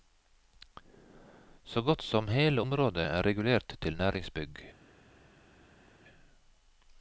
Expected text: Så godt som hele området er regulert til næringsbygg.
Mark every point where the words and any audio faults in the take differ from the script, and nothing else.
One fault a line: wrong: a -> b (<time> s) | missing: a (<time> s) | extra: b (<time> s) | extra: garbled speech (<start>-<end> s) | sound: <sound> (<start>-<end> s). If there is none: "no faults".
no faults